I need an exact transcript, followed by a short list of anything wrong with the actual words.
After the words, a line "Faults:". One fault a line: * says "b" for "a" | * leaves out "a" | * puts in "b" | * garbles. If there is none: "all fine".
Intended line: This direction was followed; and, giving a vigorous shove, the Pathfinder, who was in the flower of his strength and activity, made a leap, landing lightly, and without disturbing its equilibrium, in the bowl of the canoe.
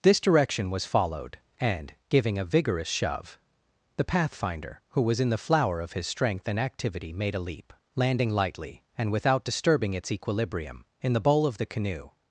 This direction was followed; and, giving a vigorous shove, the Pathfinder, who was in the flower of his strength and activity, made a leap, landing lightly, and without disturbing its equilibrium, in the bowl of the canoe.
Faults:
all fine